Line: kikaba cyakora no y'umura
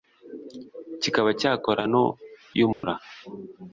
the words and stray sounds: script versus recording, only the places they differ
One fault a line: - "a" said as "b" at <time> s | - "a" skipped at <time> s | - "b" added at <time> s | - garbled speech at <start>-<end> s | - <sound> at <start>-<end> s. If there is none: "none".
- dropout at 2.7-2.8 s